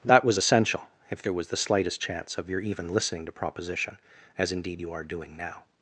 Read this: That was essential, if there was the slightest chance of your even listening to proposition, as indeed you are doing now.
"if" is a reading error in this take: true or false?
false